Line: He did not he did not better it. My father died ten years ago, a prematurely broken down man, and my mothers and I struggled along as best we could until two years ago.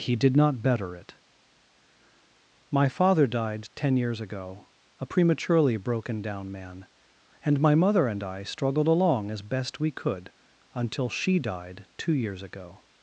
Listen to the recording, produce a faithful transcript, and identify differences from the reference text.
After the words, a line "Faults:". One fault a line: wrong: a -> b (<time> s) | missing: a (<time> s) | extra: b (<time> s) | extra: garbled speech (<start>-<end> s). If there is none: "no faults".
He did not better it. My father died ten years ago, a prematurely broken down man, and my mother and I struggled along as best we could until she died two years ago.
Faults:
missing: he did not (0.6 s)
wrong: mothers -> mother (7.7 s)
extra: she died (11.1 s)